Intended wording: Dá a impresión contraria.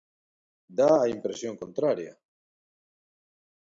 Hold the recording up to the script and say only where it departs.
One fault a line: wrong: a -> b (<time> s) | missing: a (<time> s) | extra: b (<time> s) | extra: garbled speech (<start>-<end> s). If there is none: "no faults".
no faults